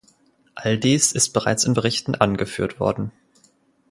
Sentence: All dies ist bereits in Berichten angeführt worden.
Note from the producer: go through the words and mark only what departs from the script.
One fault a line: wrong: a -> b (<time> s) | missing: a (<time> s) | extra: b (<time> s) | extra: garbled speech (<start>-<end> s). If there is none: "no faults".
no faults